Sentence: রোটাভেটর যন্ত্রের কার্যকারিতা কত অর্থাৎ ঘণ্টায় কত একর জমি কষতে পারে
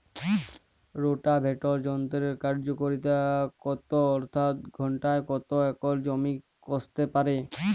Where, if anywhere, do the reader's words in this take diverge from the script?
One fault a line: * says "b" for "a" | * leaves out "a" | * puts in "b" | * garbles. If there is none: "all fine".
all fine